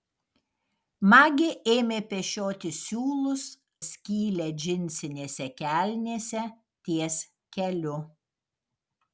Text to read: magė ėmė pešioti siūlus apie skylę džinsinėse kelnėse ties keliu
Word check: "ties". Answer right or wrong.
right